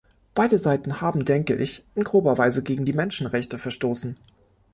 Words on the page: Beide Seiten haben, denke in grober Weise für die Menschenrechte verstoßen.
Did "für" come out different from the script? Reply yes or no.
yes